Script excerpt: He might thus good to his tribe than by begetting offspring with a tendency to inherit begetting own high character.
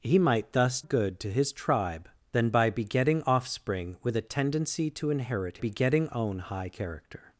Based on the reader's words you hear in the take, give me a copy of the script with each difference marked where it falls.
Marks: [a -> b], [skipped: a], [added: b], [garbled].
He might thus good to his tribe than by begetting offspring with a tendency to inherit begetting own high character.